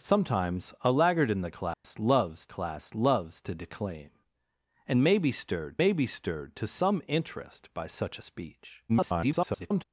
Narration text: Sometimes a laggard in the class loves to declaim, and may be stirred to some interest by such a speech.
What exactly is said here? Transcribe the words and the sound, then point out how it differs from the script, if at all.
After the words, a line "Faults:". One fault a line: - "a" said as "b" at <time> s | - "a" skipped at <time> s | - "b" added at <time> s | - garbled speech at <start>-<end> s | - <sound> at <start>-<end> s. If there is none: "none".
Sometimes a laggard in the class loves class loves to declaim, and may be stirred may be stirred to some interest by such a speech. [garbled]
Faults:
- dropout at 1.7-1.8 s
- "class loves" added at 2.5 s
- "may be stirred" added at 5.8 s
- garbled speech at 8.9-9.8 s